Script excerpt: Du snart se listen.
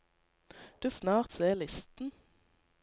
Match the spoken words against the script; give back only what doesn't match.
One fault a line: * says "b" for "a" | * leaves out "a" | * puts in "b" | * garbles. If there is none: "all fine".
all fine